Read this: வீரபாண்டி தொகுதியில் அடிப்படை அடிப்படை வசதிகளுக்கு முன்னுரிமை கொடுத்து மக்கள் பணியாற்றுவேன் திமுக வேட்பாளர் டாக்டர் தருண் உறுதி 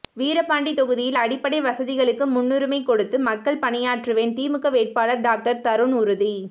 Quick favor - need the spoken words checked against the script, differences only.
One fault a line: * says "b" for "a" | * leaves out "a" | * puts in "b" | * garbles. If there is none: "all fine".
* leaves out "அடிப்படை"